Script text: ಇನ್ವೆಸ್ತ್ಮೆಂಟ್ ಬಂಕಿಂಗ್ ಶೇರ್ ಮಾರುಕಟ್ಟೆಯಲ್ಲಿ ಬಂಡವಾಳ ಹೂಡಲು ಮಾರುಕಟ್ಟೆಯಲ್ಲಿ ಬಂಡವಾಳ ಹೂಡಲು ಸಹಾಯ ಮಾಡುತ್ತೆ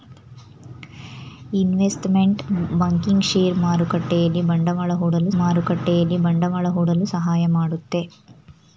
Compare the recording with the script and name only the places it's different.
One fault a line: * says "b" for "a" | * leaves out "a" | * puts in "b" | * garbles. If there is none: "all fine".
all fine